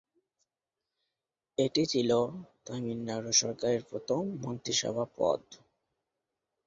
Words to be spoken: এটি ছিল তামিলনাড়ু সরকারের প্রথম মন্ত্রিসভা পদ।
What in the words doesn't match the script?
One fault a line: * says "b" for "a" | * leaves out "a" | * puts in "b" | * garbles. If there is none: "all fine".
all fine